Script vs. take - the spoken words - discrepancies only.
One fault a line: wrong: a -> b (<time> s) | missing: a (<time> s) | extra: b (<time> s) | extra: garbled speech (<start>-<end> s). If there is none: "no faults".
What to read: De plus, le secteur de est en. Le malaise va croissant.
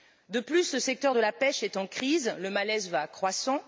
extra: la pêche (1.2 s)
extra: crise (1.9 s)